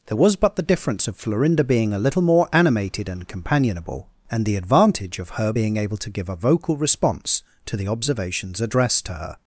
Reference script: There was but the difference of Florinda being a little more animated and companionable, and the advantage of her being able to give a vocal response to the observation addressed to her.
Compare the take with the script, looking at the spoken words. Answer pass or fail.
fail